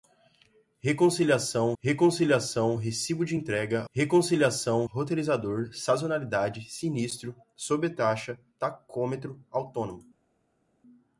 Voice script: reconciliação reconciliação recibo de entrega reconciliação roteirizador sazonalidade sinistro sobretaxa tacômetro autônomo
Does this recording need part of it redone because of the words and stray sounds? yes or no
no